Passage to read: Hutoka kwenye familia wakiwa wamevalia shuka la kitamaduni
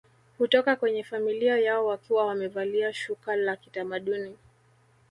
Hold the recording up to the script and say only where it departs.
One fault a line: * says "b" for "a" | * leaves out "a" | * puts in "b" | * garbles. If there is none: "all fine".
* puts in "yao"